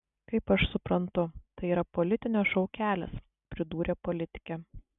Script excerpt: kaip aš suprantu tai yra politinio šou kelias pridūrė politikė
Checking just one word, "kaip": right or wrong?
right